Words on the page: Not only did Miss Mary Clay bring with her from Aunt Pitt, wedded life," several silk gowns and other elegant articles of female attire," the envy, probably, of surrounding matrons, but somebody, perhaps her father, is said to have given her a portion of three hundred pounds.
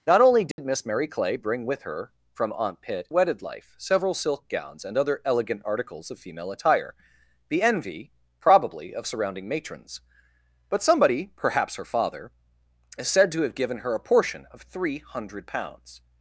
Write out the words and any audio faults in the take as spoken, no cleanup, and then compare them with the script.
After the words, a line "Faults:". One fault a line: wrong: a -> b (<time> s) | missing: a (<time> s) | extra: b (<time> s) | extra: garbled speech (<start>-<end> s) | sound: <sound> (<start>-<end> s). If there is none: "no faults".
Not only did Miss Mary Clay bring with her from Aunt Pitt, wedded life," several silk gowns and other elegant articles of female attire," the envy, probably, of surrounding matrons, but somebody, perhaps her father, is said to have given her a portion of three hundred pounds.
Faults:
sound: dropout (0.5-0.6 s)